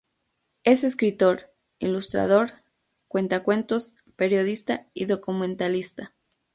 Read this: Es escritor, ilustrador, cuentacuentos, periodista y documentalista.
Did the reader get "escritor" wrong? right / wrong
right